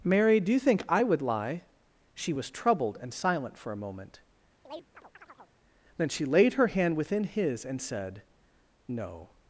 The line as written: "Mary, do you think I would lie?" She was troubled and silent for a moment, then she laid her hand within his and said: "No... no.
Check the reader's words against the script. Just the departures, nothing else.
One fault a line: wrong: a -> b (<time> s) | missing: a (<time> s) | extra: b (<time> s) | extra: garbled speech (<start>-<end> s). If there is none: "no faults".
missing: no (9.3 s)